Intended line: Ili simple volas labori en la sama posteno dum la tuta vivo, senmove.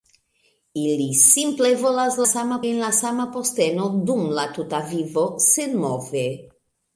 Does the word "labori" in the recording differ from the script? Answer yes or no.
yes